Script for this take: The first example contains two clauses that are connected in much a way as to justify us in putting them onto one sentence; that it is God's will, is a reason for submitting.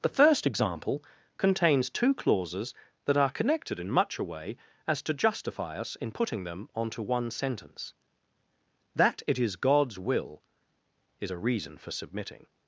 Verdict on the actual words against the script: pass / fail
pass